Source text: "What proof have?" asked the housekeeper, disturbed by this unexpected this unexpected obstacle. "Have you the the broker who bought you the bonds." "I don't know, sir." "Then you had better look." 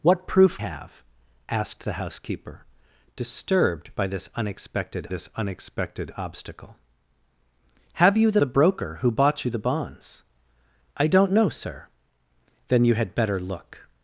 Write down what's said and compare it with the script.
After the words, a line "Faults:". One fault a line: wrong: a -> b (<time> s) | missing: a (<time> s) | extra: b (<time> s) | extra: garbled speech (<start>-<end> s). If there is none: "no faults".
"What proof have?" asked the housekeeper, disturbed by this unexpected this unexpected obstacle. "Have you the the broker who bought you the bonds." "I don't know, sir." "Then you had better look."
Faults:
no faults